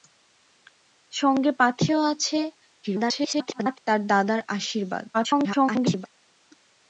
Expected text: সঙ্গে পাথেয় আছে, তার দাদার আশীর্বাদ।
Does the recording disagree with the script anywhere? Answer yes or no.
yes